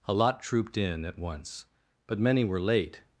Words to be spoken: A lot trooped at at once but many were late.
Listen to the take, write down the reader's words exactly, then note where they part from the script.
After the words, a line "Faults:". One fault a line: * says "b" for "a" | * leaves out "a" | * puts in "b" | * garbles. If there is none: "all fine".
A lot trooped in at once but many were late.
Faults:
* says "in" for "at"